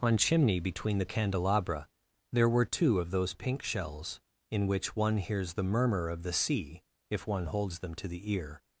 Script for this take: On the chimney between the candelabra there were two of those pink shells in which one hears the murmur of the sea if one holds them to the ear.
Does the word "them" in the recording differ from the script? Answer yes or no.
no